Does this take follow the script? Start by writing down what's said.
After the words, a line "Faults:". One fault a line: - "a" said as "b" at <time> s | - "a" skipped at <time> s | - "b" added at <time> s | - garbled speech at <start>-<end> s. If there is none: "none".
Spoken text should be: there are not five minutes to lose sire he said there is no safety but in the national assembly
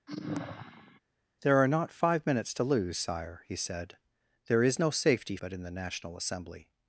there are not five minutes to lose sire he said there is no safety but in the national assembly
Faults:
none